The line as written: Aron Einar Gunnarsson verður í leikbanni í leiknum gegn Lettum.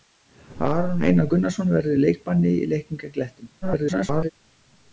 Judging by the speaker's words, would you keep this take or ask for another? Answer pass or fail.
fail